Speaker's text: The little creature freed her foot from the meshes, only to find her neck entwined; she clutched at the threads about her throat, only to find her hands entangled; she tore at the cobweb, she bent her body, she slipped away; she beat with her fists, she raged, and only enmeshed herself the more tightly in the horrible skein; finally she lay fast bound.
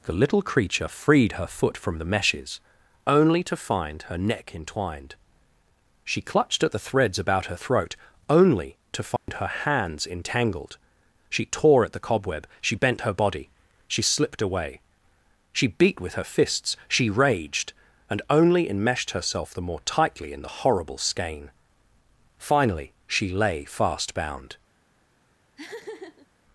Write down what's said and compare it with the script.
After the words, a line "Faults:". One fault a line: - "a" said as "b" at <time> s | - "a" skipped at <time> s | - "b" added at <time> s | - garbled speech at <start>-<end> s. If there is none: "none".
The little creature freed her foot from the meshes, only to find her neck entwined; she clutched at the threads about her throat, only to find her hands entangled; she tore at the cobweb, she bent her body, she slipped away; she beat with her fists, she raged, and only enmeshed herself the more tightly in the horrible skein; finally she lay fast bound.
Faults:
none